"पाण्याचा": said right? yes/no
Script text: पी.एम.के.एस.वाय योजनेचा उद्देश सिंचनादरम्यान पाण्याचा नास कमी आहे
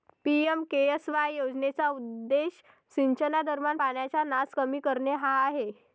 yes